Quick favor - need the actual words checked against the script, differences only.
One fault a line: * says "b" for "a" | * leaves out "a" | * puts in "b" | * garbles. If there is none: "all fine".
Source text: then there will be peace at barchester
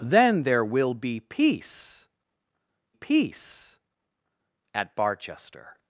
* puts in "peace"